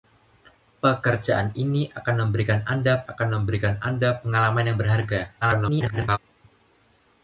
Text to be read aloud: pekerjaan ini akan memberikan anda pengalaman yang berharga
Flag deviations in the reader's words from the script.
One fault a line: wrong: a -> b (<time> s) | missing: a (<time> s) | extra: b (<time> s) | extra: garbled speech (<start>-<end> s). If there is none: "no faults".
extra: akan memberikan anda (3.1 s)
extra: garbled speech (5.4-6.2 s)